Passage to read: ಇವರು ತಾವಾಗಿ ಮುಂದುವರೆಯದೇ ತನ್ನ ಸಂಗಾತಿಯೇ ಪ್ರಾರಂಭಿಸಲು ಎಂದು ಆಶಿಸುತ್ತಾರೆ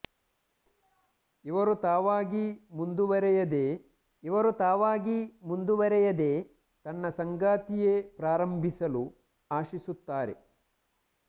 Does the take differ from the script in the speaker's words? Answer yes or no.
yes